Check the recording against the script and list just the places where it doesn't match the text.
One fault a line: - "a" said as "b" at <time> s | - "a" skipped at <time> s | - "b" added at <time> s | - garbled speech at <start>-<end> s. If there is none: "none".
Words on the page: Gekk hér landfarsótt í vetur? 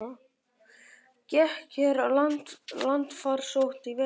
none